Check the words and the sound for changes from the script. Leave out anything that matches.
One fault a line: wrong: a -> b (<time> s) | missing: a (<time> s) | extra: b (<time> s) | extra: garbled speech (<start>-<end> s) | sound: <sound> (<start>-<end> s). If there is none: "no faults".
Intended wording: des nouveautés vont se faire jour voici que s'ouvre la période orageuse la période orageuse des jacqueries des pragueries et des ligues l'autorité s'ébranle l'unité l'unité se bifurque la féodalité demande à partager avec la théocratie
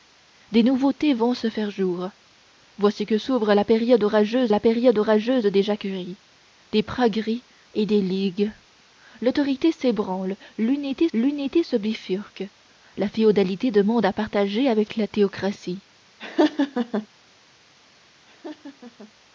sound: laugh (16.2-17.1 s)
sound: laugh (18.3-19.1 s)